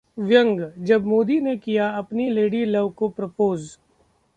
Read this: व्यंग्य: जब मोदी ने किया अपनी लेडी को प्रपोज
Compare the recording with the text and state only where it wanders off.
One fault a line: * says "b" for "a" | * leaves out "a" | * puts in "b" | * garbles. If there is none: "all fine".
* puts in "लव"